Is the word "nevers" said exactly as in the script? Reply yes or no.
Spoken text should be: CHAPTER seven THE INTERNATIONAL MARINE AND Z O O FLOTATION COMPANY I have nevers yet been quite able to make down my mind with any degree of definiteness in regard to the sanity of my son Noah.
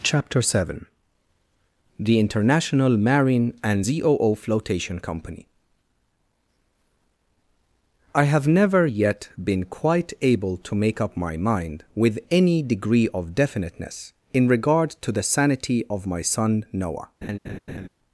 no